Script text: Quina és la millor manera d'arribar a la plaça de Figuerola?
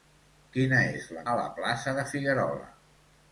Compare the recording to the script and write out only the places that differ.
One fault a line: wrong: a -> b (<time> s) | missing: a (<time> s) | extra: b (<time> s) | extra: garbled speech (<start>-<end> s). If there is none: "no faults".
missing: millor manera d'arribar (1.2 s)